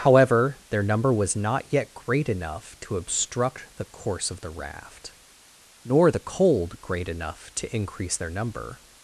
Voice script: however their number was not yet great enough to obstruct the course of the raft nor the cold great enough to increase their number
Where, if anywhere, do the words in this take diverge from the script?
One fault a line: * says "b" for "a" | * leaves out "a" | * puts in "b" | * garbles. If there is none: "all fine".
all fine